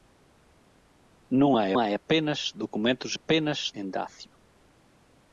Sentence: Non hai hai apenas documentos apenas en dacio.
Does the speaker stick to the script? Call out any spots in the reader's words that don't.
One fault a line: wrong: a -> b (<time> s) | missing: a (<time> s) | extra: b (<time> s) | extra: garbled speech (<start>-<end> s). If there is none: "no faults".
no faults